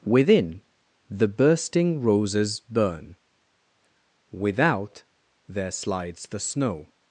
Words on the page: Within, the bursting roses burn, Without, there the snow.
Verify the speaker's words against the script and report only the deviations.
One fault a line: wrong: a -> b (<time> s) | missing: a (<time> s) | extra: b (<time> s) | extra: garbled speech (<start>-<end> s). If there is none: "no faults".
extra: slides (5.7 s)